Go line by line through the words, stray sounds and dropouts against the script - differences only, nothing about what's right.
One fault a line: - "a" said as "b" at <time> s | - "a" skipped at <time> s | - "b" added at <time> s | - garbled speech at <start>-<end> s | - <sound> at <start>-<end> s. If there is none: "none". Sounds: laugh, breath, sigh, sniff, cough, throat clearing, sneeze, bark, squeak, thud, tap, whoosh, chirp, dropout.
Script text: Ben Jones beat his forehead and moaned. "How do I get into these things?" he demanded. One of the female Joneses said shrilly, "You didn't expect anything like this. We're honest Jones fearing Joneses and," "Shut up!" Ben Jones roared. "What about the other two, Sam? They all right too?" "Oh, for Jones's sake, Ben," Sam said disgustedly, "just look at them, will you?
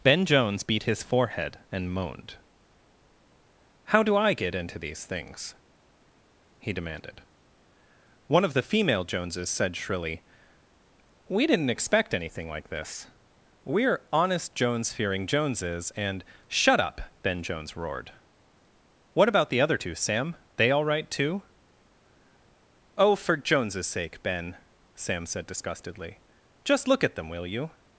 - "You" said as "We" at 11.3 s